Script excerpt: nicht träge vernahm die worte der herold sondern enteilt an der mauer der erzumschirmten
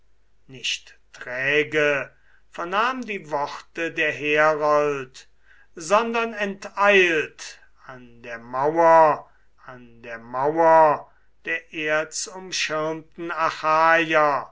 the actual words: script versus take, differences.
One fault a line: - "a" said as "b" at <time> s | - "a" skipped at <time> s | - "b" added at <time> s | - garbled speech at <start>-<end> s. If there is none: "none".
- "an der mauer" added at 9.7 s